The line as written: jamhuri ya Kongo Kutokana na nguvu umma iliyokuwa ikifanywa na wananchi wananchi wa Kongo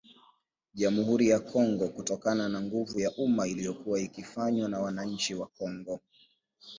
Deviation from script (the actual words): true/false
true